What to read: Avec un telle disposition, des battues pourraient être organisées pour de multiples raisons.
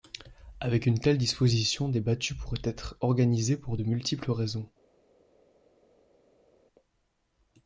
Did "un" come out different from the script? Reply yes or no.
yes